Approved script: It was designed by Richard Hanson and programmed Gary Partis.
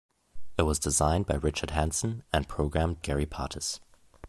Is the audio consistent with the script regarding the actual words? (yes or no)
yes